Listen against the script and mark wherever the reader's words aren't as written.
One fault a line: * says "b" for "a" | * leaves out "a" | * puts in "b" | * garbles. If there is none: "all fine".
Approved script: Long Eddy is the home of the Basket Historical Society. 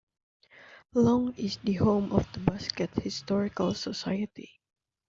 * leaves out "Eddy"